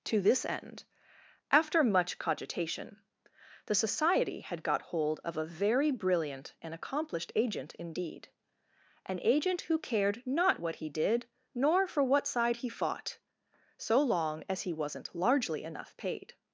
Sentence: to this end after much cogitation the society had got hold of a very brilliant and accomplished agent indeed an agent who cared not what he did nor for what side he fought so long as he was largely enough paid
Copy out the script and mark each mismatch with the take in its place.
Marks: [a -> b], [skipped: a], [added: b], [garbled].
to this end after much cogitation the society had got hold of a very brilliant and accomplished agent indeed an agent who cared not what he did nor for what side he fought so long as he [was -> wasn't] largely enough paid